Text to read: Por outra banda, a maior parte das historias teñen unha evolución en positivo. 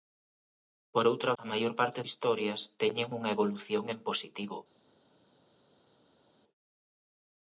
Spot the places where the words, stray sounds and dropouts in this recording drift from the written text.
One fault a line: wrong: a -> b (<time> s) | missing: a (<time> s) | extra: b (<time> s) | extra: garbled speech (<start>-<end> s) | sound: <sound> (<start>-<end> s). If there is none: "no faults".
missing: banda (1.3 s)
missing: das (2.0 s)